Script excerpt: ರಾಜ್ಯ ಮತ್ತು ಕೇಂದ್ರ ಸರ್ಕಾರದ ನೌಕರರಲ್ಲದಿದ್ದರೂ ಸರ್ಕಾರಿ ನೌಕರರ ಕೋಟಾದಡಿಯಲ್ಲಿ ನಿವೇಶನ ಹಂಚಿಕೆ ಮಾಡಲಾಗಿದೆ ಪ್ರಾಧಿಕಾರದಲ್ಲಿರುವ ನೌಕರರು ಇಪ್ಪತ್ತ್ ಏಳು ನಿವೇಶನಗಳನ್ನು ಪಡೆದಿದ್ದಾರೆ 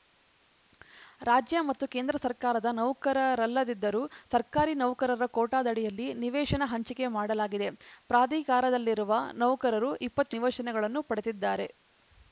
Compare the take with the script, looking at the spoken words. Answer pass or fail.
fail